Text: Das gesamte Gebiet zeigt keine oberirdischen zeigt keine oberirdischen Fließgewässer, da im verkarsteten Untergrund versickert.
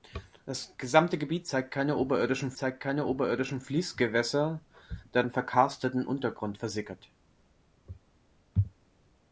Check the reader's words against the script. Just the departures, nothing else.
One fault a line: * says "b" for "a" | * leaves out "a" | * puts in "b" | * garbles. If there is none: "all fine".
all fine